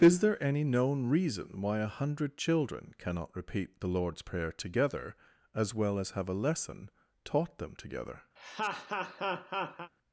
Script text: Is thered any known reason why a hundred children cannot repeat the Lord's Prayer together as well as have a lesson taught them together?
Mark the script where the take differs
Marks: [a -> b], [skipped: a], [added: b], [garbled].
Is [thered -> there] any known reason why a hundred children cannot repeat the Lord's Prayer together as well as have a lesson taught them together?